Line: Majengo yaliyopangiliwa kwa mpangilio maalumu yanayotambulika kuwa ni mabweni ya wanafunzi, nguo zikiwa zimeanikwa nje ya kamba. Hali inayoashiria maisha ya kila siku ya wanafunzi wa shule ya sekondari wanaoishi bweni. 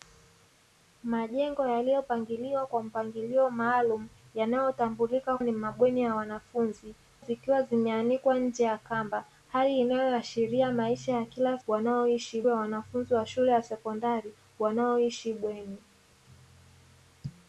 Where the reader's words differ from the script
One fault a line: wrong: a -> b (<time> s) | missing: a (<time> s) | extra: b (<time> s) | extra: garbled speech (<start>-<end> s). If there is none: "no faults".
missing: kuwa (5.4 s)
missing: nguo (6.9 s)
wrong: siku -> wanaoishi (11.7 s)